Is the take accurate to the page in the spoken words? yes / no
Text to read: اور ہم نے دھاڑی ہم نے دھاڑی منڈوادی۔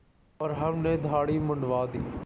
no